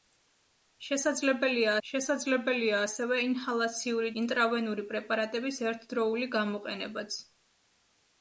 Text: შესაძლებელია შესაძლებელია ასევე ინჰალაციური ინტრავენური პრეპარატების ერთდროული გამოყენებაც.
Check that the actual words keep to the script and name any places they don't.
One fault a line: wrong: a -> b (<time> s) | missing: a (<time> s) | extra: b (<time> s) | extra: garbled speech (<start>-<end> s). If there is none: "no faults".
no faults